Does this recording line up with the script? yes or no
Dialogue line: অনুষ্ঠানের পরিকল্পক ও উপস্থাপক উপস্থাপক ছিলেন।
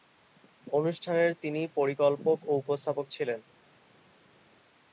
no